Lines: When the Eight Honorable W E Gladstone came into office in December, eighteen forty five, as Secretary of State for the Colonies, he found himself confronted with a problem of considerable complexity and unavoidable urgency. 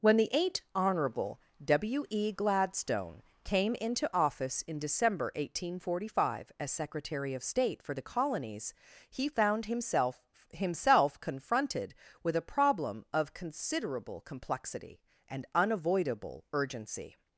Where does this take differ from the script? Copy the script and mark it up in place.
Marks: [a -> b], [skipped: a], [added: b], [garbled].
When the Eight Honorable W E Gladstone came into office in December, eighteen forty five, as Secretary of State for the Colonies, he found himself [added: himself] confronted with a problem of considerable complexity and unavoidable urgency.